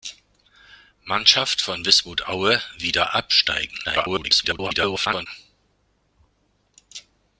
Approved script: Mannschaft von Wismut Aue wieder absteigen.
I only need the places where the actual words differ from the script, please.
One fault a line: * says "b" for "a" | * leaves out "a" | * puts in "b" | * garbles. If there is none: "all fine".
* garbles